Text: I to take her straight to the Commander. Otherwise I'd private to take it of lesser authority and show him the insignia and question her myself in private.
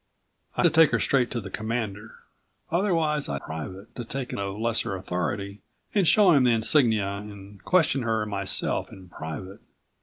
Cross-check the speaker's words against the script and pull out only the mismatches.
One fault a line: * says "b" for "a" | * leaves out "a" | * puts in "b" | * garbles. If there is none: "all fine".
all fine